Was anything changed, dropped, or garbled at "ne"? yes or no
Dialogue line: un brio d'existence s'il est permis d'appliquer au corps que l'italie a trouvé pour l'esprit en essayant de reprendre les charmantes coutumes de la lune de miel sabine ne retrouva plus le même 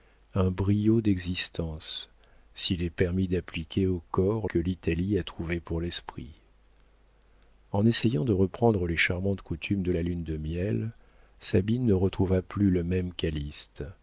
no